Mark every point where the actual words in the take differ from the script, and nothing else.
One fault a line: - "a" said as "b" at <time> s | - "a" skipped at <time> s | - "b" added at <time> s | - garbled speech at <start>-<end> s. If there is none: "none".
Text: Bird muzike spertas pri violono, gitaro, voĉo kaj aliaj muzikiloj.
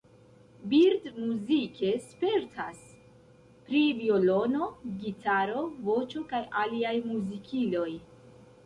none